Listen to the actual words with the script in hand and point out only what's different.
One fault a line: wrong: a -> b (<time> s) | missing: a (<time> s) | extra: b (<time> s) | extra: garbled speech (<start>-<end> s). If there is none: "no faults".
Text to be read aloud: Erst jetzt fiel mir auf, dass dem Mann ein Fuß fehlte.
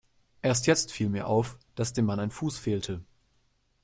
no faults